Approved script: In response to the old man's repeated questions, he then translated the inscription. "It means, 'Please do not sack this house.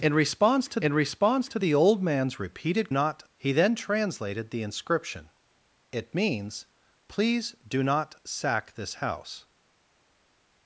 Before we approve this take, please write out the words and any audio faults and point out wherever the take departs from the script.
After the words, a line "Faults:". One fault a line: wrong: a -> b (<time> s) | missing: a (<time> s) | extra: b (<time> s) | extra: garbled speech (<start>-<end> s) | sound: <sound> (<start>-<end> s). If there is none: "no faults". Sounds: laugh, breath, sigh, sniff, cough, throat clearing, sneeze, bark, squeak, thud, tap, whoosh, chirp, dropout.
In response to in response to the old man's repeated not, he then translated the inscription. "It means, 'Please do not sack this house.
Faults:
extra: in response to (0.8 s)
wrong: questions -> not (2.9 s)